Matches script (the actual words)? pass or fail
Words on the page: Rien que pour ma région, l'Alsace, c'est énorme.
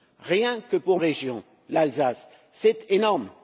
fail